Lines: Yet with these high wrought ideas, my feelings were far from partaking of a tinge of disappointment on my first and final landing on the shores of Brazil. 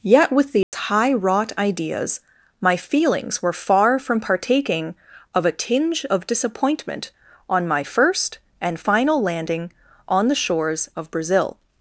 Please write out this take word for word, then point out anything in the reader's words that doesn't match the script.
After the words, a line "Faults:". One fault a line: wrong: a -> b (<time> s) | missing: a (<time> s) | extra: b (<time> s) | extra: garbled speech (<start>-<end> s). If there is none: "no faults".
Yet with these high wrought ideas, my feelings were far from partaking of a tinge of disappointment on my first and final landing on the shores of Brazil.
Faults:
no faults